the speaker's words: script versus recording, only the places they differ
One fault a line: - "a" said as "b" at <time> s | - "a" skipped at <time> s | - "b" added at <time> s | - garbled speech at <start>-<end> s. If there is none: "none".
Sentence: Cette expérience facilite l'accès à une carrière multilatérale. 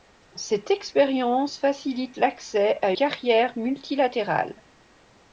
- "une" skipped at 2.9 s